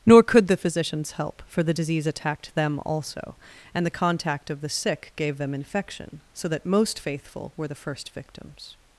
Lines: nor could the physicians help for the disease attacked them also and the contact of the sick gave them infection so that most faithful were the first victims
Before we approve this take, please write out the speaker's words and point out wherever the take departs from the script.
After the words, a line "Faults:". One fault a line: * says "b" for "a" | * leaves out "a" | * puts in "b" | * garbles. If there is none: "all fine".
nor could the physicians help for the disease attacked them also and the contact of the sick gave them infection so that most faithful were the first victims
Faults:
all fine